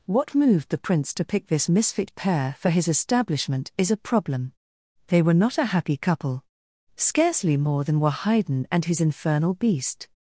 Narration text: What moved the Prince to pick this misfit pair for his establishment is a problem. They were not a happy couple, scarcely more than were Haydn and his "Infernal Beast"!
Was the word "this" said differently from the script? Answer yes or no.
no